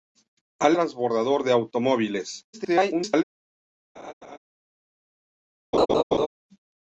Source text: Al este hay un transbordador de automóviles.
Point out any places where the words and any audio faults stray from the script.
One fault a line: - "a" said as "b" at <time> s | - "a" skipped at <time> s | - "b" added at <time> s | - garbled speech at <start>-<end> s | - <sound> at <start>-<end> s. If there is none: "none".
- "este hay un" skipped at 0.8 s
- garbled speech at 2.5-3.2 s
- laugh at 4.0-4.4 s
- laugh at 5.7-6.3 s